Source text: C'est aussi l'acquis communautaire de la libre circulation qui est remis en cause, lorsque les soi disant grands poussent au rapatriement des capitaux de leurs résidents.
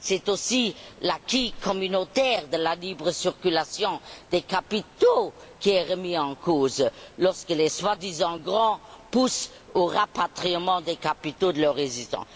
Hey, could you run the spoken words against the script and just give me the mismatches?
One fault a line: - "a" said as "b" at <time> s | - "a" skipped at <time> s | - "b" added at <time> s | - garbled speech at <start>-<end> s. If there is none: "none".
- "des capitaux" added at 4.3 s